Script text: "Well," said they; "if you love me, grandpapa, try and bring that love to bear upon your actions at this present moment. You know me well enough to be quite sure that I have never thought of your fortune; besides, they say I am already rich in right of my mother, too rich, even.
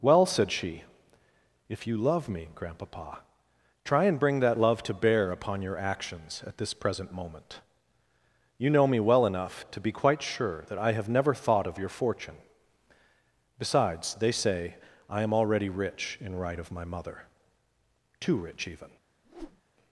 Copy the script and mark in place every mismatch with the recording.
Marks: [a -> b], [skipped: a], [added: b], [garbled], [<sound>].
"Well," said [they; -> she] "if you love me, grandpapa, try and bring that love to bear upon your actions at this present moment. You know me well enough to be quite sure that I have never thought of your fortune; besides, they say I am already rich in right of my mother, too rich, even. [whoosh]